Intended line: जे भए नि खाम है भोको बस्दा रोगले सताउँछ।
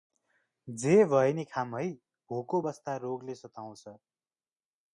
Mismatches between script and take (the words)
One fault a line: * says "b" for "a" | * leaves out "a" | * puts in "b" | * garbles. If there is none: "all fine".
all fine